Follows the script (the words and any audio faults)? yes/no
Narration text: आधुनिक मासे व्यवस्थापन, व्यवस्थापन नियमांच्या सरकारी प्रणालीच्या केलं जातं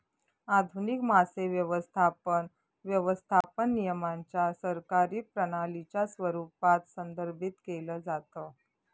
no